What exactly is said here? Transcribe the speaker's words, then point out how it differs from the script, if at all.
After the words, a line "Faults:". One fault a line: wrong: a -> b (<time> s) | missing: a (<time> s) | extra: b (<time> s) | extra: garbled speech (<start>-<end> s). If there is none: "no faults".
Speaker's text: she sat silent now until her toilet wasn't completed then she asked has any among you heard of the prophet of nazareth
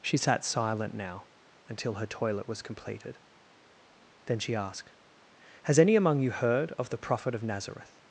she sat silent now until her toilet was completed then she asked has any among you heard of the prophet of nazareth
Faults:
wrong: wasn't -> was (2.5 s)